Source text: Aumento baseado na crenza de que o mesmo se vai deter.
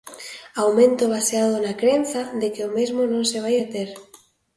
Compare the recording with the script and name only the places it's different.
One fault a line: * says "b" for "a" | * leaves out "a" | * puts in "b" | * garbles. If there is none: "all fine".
* puts in "non"